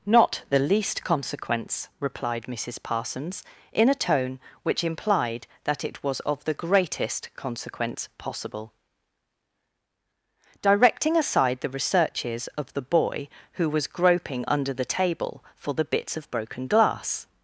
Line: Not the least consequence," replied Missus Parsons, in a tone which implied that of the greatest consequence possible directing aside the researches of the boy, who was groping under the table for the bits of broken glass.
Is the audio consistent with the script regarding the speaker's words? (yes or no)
no